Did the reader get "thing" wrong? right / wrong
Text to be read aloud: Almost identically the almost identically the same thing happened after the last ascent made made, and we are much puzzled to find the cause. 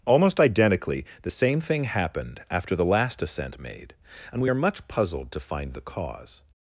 right